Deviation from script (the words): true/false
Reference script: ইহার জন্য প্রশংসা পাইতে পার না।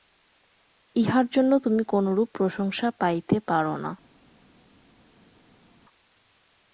true